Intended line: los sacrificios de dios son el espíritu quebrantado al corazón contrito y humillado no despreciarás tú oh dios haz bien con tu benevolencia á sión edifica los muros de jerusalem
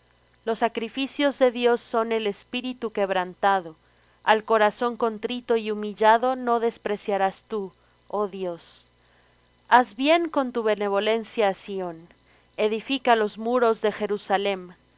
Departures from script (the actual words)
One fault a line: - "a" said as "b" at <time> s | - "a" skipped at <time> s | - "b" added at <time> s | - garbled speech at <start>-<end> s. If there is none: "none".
none